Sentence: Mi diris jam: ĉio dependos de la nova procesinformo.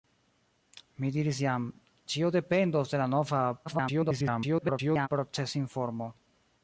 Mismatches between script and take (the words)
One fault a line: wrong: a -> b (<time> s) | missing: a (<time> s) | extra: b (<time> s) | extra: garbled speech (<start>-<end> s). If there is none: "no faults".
extra: garbled speech (3.6-5.1 s)